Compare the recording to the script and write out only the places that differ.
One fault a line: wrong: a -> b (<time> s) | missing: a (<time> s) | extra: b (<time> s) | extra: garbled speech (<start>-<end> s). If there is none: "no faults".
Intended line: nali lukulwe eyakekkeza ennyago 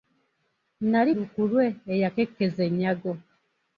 no faults